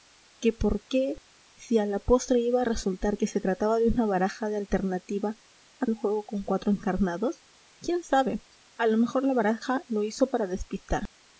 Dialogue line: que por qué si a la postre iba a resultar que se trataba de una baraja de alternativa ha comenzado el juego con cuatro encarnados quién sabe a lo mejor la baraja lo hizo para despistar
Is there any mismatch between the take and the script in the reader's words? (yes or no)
yes